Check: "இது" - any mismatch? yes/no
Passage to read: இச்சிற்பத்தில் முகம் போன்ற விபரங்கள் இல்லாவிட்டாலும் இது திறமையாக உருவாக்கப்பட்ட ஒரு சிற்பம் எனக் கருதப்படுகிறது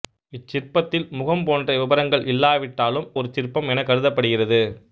yes